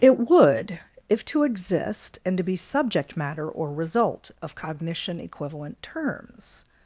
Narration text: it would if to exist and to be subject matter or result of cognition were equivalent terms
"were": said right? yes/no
no